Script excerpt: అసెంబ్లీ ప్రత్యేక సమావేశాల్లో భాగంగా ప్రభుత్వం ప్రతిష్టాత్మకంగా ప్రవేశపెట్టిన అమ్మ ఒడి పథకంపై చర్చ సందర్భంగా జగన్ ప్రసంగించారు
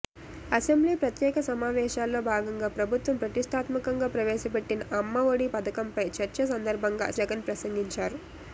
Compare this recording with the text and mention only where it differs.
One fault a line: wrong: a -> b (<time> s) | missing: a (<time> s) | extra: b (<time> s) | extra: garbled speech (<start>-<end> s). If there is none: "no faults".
no faults